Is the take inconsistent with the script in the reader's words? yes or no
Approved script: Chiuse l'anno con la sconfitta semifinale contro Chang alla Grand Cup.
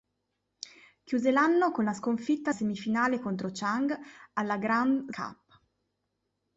no